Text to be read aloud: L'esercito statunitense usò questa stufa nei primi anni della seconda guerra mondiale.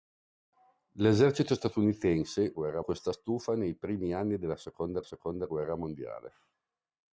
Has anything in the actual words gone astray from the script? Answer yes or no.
yes